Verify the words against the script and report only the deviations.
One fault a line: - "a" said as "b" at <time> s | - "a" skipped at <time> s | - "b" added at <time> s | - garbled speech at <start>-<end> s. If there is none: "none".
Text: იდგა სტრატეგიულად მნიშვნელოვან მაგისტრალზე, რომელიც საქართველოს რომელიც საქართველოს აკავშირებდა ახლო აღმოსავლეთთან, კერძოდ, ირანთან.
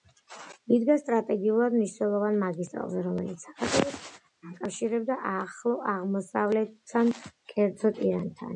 - "რომელიც საქართველოს" skipped at 4.0 s